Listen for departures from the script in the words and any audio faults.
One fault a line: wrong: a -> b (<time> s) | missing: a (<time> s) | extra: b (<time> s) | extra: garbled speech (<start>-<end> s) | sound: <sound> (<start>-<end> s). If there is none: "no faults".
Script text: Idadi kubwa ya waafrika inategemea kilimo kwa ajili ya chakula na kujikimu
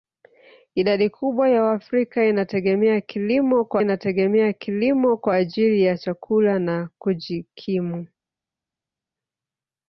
extra: inategemea kilimo kwa (3.8 s)